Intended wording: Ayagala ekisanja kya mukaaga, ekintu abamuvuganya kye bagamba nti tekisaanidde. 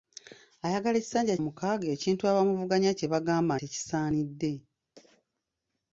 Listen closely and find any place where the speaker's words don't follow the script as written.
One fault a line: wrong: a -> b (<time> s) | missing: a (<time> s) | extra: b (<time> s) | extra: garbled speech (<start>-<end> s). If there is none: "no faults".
missing: kya (1.4 s)
missing: nti (3.5 s)